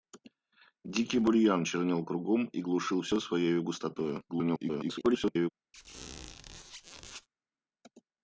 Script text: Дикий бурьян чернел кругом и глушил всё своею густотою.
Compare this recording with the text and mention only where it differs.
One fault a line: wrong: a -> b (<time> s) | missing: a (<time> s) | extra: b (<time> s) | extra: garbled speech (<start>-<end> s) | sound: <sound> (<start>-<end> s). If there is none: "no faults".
extra: garbled speech (4.3-5.5 s)
sound: squeak (5.7-7.3 s)